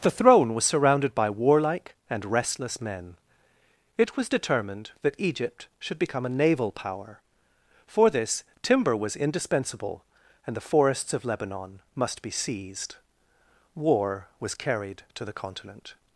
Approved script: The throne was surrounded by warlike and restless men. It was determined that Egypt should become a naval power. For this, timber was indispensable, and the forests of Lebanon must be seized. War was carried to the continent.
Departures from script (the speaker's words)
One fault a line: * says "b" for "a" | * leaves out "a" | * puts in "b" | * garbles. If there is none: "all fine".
all fine